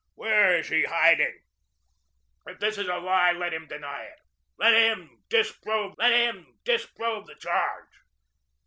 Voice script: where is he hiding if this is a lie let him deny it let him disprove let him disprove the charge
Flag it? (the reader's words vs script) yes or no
no